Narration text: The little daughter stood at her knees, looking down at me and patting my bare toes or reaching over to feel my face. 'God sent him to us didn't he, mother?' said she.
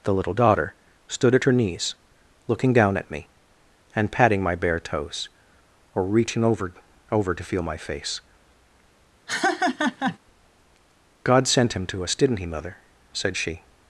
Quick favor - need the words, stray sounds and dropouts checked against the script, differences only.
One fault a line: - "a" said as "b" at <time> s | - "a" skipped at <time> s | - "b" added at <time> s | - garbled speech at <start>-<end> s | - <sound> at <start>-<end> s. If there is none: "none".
- "over" added at 7.1 s
- laugh at 9.3-10.2 s